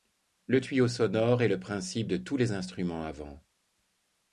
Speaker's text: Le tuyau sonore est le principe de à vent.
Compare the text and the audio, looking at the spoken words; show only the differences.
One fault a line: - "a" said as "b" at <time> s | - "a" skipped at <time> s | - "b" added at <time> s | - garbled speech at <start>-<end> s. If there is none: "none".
- "tous les instruments" added at 2.1 s